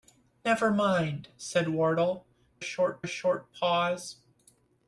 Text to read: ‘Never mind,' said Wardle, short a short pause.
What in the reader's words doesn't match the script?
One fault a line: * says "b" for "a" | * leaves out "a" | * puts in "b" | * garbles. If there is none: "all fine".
all fine